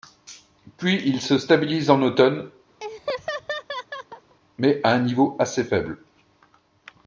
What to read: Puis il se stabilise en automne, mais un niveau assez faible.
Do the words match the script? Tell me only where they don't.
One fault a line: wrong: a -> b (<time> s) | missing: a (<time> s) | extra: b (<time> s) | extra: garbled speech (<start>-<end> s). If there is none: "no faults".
extra: à (4.8 s)